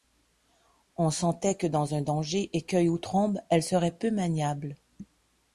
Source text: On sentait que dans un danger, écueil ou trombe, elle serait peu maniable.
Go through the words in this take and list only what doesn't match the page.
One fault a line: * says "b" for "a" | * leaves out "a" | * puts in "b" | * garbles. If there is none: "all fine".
all fine